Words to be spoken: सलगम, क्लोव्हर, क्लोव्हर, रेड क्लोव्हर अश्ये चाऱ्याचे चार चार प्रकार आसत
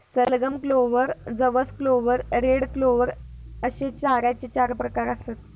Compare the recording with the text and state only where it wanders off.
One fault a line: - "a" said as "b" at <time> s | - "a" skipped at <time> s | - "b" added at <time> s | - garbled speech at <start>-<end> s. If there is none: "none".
- "जवस" added at 1.3 s
- "चार" skipped at 4.7 s